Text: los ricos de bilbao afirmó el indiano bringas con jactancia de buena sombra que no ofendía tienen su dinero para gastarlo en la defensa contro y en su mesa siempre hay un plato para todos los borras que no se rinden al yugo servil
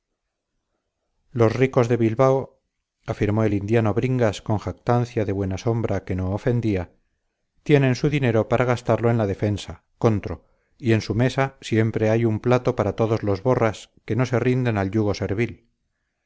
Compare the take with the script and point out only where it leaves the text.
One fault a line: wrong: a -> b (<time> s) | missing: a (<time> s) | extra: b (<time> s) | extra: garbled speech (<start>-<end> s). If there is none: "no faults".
no faults